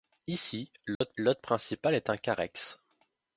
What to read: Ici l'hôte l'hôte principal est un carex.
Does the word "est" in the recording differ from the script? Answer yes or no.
no